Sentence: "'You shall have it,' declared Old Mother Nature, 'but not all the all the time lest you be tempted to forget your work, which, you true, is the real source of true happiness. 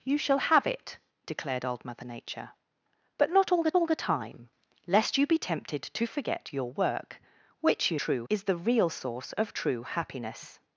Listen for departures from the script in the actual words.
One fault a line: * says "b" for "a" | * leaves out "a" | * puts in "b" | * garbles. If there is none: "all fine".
all fine